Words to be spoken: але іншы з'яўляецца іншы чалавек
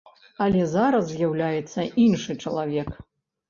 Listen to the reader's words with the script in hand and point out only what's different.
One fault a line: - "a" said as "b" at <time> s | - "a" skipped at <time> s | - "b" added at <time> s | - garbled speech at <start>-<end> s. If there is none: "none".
- "іншы" said as "зараз" at 0.7 s